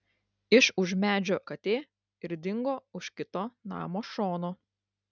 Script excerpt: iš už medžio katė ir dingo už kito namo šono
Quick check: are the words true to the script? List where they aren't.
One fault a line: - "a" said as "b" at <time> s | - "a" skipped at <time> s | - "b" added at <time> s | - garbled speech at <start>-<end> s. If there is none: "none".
none